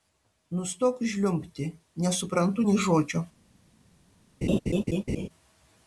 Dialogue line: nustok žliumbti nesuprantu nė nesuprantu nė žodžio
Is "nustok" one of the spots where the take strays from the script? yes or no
no